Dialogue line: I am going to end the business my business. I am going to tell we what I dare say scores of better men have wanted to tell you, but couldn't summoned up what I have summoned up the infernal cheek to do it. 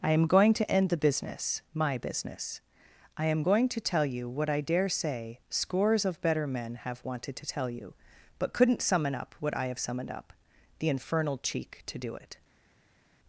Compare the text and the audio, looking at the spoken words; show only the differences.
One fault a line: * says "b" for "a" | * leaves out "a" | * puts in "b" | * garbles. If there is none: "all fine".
* says "you" for "we"
* says "summon" for "summoned"